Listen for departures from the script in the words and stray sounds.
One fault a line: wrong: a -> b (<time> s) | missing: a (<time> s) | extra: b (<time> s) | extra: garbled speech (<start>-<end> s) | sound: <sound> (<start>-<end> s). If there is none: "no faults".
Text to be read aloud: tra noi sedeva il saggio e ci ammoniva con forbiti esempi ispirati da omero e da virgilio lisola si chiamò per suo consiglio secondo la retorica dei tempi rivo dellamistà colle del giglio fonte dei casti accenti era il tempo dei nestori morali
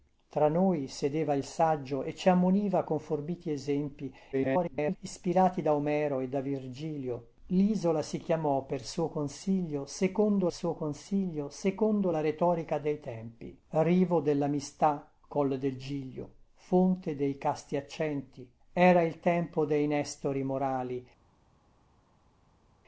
extra: garbled speech (4.3-5.0 s)
extra: suo consiglio secondo (10.5 s)